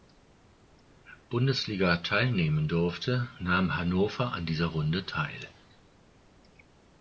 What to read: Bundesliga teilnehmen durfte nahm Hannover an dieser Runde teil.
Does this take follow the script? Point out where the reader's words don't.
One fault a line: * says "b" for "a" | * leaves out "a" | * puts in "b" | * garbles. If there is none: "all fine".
all fine